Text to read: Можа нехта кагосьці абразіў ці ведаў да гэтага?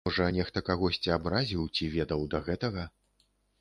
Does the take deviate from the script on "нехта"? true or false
false